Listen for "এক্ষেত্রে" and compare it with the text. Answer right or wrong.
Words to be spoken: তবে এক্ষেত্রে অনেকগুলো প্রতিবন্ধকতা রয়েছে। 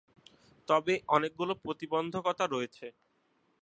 wrong